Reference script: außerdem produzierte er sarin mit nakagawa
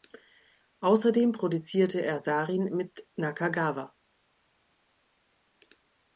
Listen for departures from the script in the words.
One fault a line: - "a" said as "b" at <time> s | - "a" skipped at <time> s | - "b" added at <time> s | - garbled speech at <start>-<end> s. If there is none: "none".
none